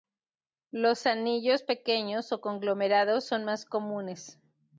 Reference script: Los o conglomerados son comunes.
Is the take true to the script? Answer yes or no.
no